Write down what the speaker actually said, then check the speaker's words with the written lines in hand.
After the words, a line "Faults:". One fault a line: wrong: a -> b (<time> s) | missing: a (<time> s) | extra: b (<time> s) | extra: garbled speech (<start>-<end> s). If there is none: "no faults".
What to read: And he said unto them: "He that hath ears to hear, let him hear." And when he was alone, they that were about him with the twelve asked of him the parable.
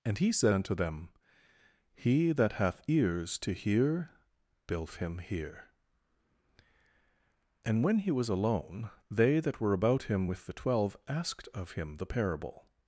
And he said unto them: "He that hath ears to hear, bilf him hear." And when he was alone, they that were about him with the twelve asked of him the parable.
Faults:
wrong: let -> bilf (4.7 s)